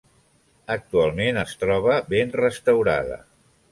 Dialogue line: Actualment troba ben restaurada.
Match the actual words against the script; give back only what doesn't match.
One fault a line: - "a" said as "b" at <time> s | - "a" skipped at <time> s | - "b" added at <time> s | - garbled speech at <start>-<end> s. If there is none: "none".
- "es" added at 1.4 s